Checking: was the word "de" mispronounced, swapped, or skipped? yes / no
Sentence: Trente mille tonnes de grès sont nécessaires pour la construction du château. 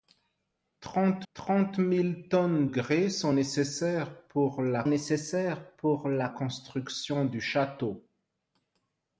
yes